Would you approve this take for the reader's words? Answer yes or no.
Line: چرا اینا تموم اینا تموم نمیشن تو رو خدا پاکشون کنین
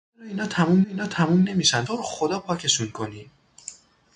yes